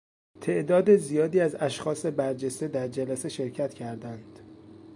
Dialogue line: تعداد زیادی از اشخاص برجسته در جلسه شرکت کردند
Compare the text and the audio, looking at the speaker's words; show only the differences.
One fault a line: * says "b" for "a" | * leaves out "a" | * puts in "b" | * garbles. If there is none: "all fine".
all fine